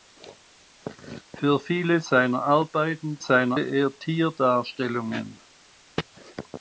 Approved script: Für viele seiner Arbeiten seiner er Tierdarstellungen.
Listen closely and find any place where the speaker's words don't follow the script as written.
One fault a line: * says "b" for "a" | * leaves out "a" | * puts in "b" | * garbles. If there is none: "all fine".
all fine